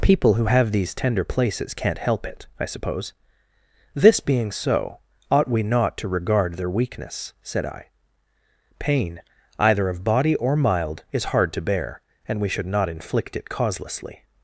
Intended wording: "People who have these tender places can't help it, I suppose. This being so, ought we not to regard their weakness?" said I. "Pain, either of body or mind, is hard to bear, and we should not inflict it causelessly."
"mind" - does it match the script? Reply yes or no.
no